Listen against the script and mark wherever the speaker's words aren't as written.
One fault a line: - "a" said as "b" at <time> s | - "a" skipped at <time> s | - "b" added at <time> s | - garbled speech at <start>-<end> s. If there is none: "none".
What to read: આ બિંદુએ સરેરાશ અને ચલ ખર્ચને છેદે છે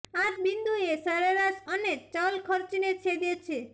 none